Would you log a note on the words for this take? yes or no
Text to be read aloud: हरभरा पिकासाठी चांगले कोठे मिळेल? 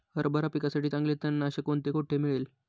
yes